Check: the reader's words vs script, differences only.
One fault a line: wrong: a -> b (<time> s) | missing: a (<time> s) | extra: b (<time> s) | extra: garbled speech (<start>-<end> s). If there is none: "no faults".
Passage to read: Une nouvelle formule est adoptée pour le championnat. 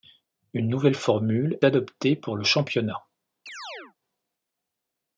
missing: est (1.6 s)